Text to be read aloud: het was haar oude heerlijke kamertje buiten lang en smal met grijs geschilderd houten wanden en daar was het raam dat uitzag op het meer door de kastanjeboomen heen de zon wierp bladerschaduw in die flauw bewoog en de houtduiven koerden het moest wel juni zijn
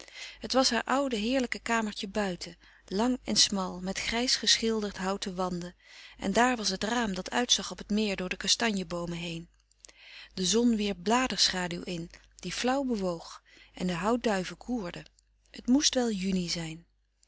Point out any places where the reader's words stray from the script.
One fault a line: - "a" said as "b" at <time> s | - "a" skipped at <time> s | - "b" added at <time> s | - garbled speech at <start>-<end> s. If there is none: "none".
none